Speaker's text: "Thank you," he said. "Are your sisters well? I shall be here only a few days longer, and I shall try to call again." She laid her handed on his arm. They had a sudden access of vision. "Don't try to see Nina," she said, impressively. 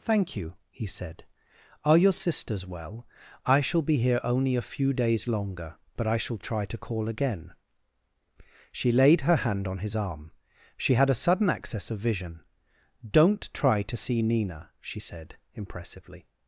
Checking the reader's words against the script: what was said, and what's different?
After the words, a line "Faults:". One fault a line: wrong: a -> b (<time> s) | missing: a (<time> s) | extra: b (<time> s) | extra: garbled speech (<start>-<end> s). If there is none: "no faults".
"Thank you," he said. "Are your sisters well? I shall be here only a few days longer, but I shall try to call again." She laid her hand on his arm. She had a sudden access of vision. "Don't try to see Nina," she said, impressively.
Faults:
wrong: and -> but (6.0 s)
wrong: handed -> hand (9.4 s)
wrong: They -> She (10.8 s)